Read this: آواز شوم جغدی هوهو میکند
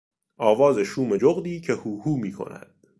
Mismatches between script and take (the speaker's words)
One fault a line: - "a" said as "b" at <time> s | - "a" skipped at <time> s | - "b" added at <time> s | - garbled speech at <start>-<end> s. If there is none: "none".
- "که" added at 1.6 s